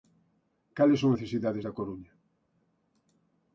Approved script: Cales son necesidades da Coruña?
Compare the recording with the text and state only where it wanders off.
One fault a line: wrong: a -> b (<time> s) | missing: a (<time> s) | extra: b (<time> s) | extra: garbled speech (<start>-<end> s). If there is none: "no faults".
no faults